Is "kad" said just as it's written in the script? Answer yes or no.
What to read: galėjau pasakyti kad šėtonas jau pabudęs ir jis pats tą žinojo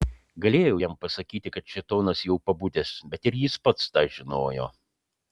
yes